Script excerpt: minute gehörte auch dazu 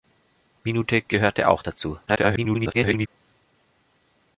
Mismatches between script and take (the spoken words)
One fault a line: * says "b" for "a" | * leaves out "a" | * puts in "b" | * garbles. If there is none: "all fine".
* garbles